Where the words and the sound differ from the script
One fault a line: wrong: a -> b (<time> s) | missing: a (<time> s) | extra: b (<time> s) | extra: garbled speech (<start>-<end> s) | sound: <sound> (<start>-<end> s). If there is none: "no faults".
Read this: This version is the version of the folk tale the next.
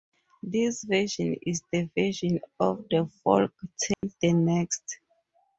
sound: dropout (3.9-4.0 s)